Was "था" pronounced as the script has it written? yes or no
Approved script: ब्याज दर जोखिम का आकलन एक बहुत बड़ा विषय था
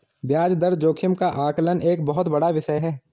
no